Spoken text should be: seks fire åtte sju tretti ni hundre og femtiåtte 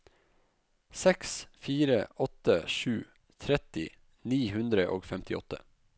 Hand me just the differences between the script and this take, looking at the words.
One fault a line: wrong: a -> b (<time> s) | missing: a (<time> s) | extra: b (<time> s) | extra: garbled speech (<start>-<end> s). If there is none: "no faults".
no faults